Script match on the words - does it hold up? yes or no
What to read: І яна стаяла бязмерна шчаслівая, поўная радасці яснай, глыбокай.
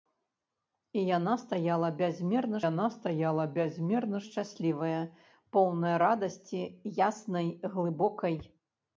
no